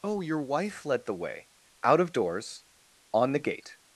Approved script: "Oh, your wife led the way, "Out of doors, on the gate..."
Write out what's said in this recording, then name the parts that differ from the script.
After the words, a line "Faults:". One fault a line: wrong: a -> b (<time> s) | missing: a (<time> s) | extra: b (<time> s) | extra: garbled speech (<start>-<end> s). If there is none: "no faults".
"Oh, your wife led the way, "Out of doors, on the gate..."
Faults:
no faults